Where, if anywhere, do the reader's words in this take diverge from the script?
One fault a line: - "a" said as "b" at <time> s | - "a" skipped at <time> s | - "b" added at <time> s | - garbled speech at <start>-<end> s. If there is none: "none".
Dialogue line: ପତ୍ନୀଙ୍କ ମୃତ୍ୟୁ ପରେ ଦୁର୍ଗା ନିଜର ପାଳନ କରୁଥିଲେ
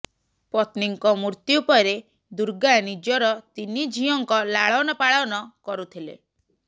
- "ତିନି ଝିଅଙ୍କ ଲାଳନ" added at 3.6 s